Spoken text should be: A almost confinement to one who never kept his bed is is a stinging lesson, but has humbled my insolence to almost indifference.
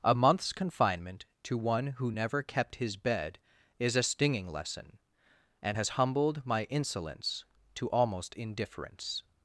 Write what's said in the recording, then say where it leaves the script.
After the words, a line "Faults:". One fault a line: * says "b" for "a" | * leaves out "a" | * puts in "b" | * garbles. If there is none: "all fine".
A month's confinement to one who never kept his bed is a stinging lesson, and has humbled my insolence to almost indifference.
Faults:
* says "month's" for "almost"
* leaves out "is"
* says "and" for "but"